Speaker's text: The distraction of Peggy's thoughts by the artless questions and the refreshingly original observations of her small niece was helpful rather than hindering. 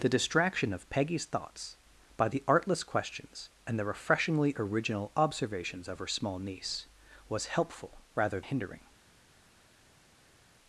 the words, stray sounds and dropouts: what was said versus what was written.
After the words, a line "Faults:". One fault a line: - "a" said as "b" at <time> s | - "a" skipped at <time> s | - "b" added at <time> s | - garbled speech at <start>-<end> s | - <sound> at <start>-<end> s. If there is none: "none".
The distraction of Peggy's thoughts by the artless questions and the refreshingly original observations of her small niece was helpful rather hindering.
Faults:
- "than" skipped at 8.4 s